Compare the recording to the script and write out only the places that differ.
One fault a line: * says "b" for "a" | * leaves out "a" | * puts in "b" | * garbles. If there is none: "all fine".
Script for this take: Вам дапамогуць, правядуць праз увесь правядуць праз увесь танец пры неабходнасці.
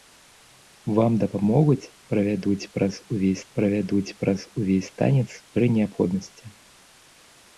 all fine